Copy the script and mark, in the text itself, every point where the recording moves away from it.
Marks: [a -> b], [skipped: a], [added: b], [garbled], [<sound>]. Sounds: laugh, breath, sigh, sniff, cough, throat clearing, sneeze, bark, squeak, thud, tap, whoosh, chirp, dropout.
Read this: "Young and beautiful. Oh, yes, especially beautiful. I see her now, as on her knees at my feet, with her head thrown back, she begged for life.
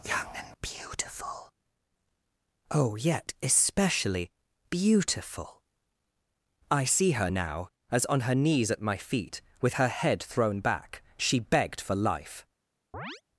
"Young and beautiful. Oh, [yes, -> yet] especially beautiful. I see her now, as on her knees at my feet, with her head thrown back, she begged for life. [chirp]